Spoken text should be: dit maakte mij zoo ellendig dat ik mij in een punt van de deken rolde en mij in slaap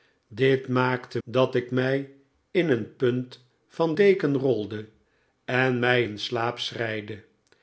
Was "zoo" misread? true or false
true